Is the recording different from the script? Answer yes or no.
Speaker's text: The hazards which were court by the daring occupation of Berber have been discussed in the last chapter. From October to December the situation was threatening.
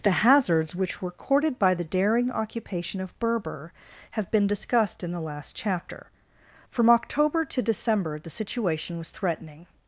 yes